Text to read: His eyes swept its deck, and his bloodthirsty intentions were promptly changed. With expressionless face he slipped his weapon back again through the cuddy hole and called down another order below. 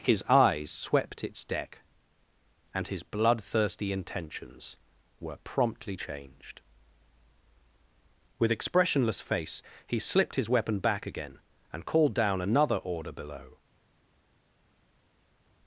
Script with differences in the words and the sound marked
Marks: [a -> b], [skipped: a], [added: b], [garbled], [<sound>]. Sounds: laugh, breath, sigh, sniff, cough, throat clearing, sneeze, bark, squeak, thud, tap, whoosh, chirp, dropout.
His eyes swept its deck, and his bloodthirsty intentions were promptly changed. With expressionless face he slipped his weapon back again [skipped: through the cuddy hole] and called down another order below.